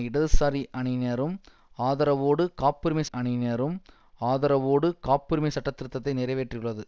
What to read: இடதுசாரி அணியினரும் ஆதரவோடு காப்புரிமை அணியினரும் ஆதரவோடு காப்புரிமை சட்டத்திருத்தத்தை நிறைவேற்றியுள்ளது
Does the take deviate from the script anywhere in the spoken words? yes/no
no